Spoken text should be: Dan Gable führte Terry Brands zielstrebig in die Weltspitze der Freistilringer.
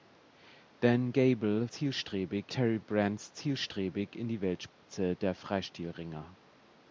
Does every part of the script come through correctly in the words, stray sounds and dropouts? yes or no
no